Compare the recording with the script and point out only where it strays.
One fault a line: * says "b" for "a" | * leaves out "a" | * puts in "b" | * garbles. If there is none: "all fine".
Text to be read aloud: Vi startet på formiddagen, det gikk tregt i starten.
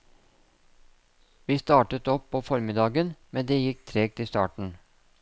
* puts in "opp"
* puts in "men"